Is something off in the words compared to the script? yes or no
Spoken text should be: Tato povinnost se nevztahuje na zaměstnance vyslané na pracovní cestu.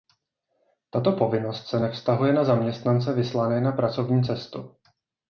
no